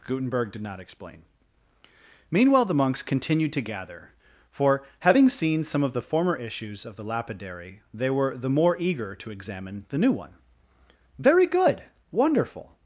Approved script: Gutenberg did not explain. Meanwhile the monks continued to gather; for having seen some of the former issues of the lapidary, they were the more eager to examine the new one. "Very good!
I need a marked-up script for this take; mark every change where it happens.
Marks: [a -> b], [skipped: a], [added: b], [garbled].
Gutenberg did not explain. Meanwhile the monks continued to gather; for having seen some of the former issues of the lapidary, they were the more eager to examine the new one. "Very good! [added: wonderful]